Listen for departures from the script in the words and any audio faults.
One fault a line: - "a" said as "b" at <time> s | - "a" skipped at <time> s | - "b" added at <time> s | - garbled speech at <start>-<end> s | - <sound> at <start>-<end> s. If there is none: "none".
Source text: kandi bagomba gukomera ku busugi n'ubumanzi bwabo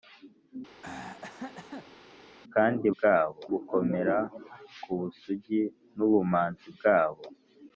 - throat clearing at 0.8-2.0 s
- "bagomba" said as "bwabo" at 2.9 s